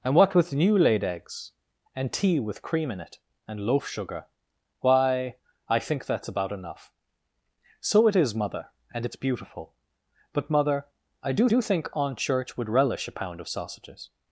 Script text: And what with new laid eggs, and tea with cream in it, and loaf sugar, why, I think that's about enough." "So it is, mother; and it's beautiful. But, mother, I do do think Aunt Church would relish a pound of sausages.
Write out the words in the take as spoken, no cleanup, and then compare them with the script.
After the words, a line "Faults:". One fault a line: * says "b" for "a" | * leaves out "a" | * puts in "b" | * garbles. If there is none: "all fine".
And what with new laid eggs, and tea with cream in it, and loaf sugar, why, I think that's about enough." "So it is, mother; and it's beautiful. But, mother, I do do think Aunt Church would relish a pound of sausages.
Faults:
all fine